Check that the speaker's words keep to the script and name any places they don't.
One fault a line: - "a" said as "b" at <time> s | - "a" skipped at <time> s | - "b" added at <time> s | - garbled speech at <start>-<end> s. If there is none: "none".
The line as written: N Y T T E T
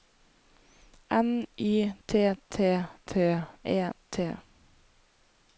- "T" added at 3.1 s